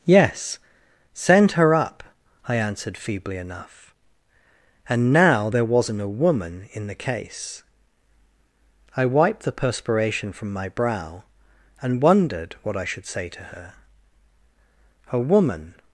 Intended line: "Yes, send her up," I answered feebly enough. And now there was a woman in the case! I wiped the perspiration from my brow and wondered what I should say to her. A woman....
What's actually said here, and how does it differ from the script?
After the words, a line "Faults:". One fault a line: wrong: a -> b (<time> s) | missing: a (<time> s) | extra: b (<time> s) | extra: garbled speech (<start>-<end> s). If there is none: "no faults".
"Yes, send her up," I answered feebly enough. And now there wasn't a woman in the case! I wiped the perspiration from my brow and wondered what I should say to her. A woman....
Faults:
wrong: was -> wasn't (5.7 s)